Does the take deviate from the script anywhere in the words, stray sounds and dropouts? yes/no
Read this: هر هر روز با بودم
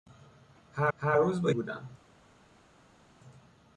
no